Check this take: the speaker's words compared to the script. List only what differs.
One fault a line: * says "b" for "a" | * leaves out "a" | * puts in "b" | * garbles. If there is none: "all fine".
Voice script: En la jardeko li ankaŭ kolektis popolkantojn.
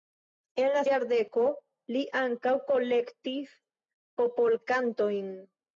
all fine